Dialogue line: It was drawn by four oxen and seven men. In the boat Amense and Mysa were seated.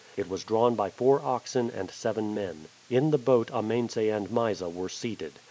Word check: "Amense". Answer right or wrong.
right